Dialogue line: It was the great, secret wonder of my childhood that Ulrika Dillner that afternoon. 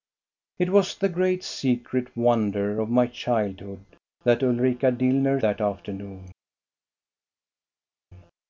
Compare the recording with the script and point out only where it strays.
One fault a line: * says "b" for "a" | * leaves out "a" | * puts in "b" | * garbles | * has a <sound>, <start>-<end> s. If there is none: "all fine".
all fine